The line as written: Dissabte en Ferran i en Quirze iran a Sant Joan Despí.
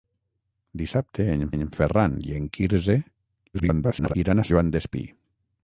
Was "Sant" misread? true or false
true